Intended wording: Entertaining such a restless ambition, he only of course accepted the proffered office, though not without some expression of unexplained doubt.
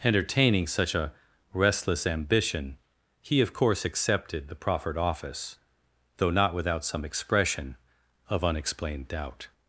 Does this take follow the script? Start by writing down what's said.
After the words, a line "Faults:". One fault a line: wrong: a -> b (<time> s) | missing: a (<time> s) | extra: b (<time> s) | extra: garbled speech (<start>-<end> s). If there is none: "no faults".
Entertaining such a restless ambition, he of course accepted the proffered office, though not without some expression of unexplained doubt.
Faults:
missing: only (3.4 s)